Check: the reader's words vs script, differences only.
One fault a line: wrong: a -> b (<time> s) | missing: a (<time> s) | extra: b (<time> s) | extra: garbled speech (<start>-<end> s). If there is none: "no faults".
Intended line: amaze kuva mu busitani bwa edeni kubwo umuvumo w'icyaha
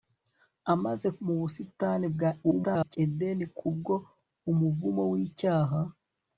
missing: kuva (1.1 s)
extra: garbled speech (2.4-3.0 s)